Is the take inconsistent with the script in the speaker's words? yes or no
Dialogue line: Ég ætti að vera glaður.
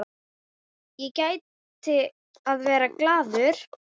no